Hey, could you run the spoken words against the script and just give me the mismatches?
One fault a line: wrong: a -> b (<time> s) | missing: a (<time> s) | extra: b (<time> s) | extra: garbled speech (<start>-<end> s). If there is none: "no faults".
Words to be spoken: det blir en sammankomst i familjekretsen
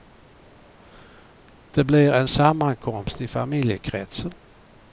no faults